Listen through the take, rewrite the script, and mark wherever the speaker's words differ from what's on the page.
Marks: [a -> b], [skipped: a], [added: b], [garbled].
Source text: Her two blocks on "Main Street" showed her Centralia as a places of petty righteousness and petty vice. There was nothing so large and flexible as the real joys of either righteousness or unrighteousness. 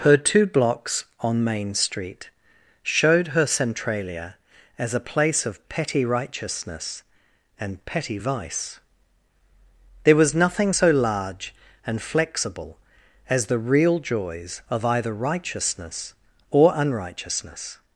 Her two blocks on "Main Street" showed her Centralia as a [places -> place] of petty righteousness and petty vice. There was nothing so large and flexible as the real joys of either righteousness or unrighteousness.